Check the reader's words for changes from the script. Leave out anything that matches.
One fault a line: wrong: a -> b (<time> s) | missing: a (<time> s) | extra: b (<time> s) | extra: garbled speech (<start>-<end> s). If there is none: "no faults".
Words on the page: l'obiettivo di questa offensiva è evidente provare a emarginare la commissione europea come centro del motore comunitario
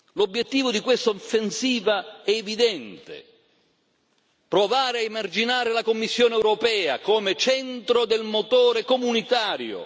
no faults